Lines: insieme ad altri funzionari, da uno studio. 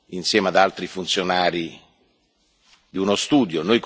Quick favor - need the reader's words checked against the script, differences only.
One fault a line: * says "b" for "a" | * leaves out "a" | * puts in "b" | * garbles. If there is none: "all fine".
* says "di" for "da"